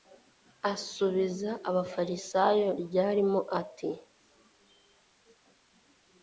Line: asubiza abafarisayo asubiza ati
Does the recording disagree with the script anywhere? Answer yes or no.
yes